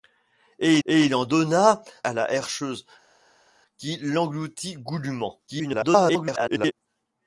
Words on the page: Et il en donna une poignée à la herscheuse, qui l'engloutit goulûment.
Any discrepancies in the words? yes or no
yes